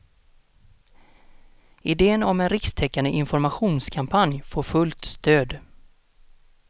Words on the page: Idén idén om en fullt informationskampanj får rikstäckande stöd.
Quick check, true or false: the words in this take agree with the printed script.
false